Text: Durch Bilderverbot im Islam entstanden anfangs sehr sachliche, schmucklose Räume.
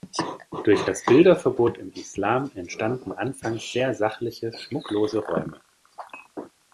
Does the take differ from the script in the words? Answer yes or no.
yes